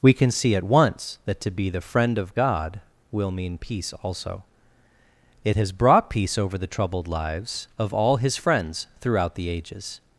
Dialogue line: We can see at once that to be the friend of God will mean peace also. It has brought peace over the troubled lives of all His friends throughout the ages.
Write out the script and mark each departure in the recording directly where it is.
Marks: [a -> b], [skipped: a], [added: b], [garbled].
We can see at once that to be the friend of God will mean peace also. It has brought peace over the troubled lives of all His friends throughout the ages.